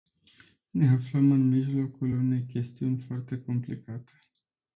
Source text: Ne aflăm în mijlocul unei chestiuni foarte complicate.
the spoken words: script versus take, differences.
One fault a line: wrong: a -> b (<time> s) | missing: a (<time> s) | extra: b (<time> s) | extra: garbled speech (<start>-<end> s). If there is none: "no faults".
no faults